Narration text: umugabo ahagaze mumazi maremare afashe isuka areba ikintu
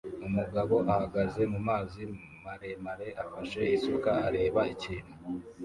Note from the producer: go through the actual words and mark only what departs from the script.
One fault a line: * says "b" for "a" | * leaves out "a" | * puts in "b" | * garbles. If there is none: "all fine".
all fine